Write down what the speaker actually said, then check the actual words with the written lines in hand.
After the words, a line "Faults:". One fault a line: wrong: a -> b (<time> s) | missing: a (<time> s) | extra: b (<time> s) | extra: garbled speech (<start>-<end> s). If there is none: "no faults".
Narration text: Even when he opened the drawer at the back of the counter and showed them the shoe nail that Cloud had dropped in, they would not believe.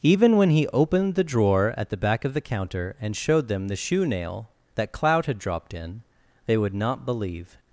Even when he opened the drawer at the back of the counter and showed them the shoe nail that Cloud had dropped in, they would not believe.
Faults:
no faults